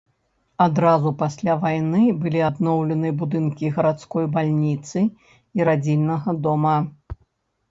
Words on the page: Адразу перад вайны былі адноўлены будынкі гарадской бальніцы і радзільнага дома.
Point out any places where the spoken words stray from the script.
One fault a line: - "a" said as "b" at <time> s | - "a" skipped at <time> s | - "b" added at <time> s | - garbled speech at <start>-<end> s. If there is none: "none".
- "перад" said as "пасля" at 1.2 s